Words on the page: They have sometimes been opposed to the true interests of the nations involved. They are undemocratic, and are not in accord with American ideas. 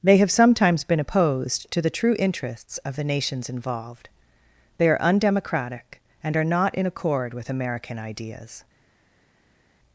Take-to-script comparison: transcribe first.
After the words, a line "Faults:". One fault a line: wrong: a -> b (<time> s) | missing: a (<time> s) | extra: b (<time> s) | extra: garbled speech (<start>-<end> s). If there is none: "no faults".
They have sometimes been opposed to the true interests of the nations involved. They are undemocratic, and are not in accord with American ideas.
Faults:
no faults